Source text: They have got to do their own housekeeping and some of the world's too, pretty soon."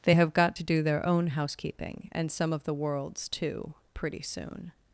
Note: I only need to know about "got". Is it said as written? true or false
true